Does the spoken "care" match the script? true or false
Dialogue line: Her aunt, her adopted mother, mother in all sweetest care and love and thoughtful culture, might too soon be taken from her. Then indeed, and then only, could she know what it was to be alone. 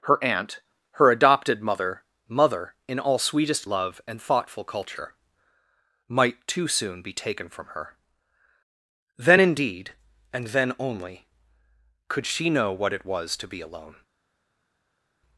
false